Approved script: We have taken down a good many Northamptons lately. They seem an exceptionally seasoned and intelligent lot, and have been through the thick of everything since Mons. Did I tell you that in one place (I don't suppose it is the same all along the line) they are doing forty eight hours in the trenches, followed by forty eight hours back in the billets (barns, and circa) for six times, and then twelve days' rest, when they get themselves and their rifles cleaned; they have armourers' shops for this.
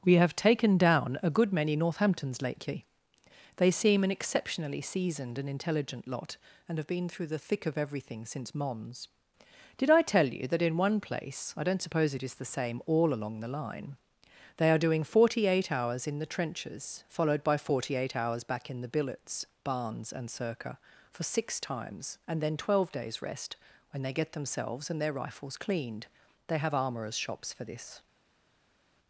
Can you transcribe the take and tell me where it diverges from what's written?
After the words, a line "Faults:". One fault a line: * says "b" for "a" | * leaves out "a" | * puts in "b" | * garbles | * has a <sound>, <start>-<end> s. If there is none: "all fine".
We have taken down a good many Northamptons lately. They seem an exceptionally seasoned and intelligent lot, and have been through the thick of everything since Mons. Did I tell you that in one place (I don't suppose it is the same all along the line) they are doing forty eight hours in the trenches, followed by forty eight hours back in the billets (barns, and circa) for six times, and then twelve days' rest, when they get themselves and their rifles cleaned; they have armourers' shops for this.
Faults:
all fine